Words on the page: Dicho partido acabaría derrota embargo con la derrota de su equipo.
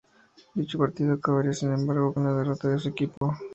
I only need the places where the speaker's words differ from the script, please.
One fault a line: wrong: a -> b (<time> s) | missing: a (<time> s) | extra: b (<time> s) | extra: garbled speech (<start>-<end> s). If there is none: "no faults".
wrong: derrota -> sin (1.5 s)